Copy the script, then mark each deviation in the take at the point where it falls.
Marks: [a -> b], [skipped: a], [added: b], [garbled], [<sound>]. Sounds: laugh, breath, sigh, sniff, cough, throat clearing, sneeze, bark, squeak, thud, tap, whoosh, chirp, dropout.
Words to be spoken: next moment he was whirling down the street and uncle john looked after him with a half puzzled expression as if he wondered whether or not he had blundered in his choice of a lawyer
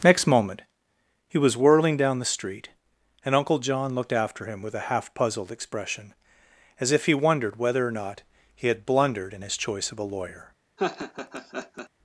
next moment he was whirling down the street and uncle john looked after him with a half puzzled expression as if he wondered whether or not he had blundered in his choice of a lawyer [laugh]